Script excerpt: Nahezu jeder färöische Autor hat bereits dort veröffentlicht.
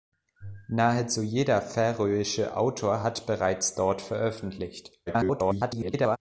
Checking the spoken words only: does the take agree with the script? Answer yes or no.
no